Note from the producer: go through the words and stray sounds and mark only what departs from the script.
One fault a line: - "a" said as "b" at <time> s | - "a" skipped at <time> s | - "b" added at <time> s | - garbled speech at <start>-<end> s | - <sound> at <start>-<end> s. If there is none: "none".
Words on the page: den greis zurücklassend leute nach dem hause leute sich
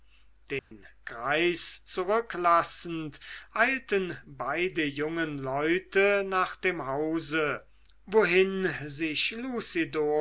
- dropout at 0.6-0.7 s
- "eilten beide jungen" added at 3.5 s
- "leute" said as "wohin" at 8.1 s